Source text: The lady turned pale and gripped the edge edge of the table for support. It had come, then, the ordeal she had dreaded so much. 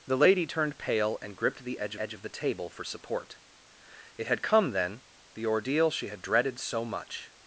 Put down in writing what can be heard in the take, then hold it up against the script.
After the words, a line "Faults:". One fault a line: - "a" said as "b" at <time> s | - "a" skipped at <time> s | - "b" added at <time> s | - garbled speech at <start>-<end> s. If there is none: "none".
The lady turned pale and gripped the edge edge of the table for support. It had come, then, the ordeal she had dreaded so much.
Faults:
none